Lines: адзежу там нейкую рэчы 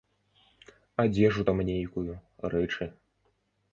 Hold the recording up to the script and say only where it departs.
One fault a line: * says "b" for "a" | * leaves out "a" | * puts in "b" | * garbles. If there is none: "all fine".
all fine